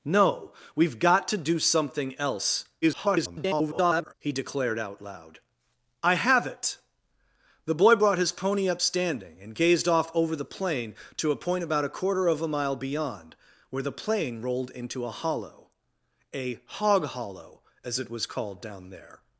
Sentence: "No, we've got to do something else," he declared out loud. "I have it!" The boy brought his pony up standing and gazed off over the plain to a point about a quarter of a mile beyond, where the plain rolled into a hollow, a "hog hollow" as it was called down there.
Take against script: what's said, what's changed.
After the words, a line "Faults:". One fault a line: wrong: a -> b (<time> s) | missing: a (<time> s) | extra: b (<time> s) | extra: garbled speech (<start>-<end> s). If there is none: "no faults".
"No, we've got to do something else," [garbled] he declared out loud. "I have it!" The boy brought his pony up standing and gazed off over the plain to a point about a quarter of a mile beyond, where the plain rolled into a hollow, a "hog hollow" as it was called down there.
Faults:
extra: garbled speech (2.8-4.1 s)